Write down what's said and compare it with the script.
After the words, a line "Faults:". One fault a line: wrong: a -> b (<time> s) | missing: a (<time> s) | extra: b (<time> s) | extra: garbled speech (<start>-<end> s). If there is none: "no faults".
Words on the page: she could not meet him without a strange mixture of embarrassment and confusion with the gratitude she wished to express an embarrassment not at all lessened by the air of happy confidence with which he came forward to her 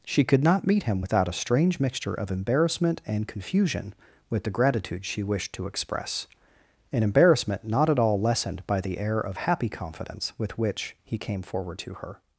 she could not meet him without a strange mixture of embarrassment and confusion with the gratitude she wished to express an embarrassment not at all lessened by the air of happy confidence with which he came forward to her
Faults:
no faults